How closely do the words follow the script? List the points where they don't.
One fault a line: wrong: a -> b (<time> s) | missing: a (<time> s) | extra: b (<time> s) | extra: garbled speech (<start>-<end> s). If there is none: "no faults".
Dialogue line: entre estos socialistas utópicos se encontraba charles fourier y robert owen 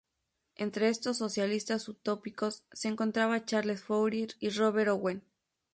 no faults